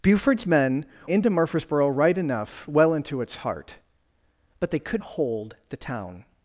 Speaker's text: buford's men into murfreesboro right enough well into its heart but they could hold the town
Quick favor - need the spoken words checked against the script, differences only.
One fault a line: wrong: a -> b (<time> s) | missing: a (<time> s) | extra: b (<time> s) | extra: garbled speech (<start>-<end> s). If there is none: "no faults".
no faults